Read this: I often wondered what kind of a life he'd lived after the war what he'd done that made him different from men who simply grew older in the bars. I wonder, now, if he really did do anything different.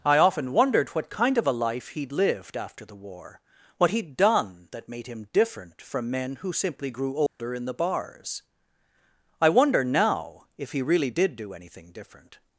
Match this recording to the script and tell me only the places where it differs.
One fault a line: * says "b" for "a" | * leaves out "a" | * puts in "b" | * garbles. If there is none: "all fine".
all fine